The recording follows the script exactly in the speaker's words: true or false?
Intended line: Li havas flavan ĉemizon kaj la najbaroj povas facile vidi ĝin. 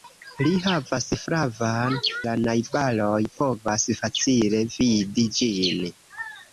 false